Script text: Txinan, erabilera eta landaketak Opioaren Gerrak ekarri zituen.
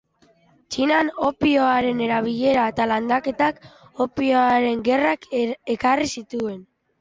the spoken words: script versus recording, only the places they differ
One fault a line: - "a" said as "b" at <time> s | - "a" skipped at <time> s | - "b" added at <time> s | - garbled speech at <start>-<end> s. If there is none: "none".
- "opioaren" added at 1.3 s